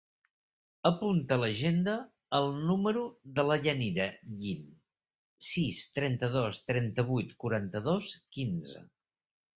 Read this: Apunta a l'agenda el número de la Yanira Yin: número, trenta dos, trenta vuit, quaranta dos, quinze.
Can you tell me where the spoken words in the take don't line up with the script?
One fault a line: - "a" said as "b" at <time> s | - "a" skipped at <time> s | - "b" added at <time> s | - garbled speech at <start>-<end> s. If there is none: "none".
- "número" said as "sis" at 5.5 s